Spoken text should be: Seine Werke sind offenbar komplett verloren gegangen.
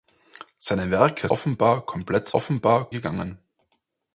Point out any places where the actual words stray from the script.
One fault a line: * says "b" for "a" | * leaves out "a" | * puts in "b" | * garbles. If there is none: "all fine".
* leaves out "sind"
* says "offenbar" for "verloren"